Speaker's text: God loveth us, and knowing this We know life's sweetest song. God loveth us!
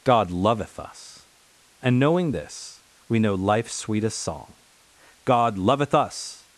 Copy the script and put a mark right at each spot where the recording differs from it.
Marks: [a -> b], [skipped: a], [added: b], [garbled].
God loveth us, and knowing this We know life's sweetest song. God loveth us!